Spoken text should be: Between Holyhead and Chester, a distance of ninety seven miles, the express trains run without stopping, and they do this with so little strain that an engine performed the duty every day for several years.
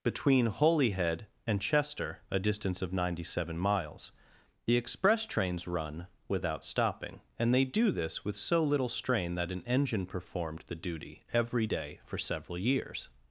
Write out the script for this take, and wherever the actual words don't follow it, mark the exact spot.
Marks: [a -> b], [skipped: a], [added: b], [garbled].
Between Holyhead and Chester, a distance of ninety seven miles, the express trains run without stopping, and they do this with so little strain that an engine performed the duty every day for several years.